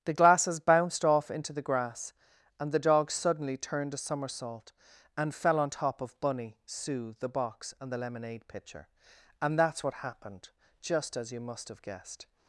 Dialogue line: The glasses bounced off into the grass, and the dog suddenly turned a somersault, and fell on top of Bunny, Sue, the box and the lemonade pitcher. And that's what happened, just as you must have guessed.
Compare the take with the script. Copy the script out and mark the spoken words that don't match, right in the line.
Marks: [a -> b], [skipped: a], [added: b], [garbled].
The glasses bounced off into the grass, and the dog suddenly turned a somersault, and fell on top of Bunny, Sue, the box and the lemonade pitcher. And that's what happened, just as you must have guessed.